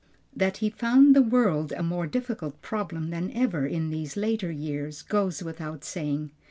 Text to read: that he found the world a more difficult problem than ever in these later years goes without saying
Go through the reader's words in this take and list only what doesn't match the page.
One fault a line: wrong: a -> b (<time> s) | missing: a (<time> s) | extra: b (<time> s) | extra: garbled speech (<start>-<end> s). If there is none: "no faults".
no faults